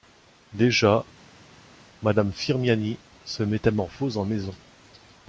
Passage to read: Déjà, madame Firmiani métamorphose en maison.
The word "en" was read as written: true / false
true